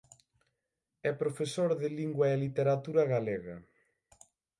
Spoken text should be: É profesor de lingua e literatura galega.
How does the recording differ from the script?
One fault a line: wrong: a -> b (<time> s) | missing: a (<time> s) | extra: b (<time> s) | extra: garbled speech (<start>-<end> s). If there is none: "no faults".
no faults